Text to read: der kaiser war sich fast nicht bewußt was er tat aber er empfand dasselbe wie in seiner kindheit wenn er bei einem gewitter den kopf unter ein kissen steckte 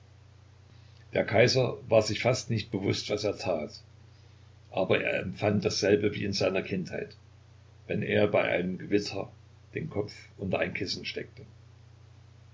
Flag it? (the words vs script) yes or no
no